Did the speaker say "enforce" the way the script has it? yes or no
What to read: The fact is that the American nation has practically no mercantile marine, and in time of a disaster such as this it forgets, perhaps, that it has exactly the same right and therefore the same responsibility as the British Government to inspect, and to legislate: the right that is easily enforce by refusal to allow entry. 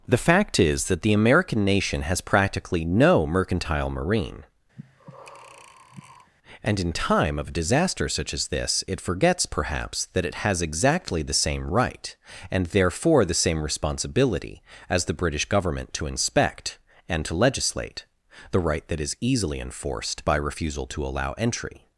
no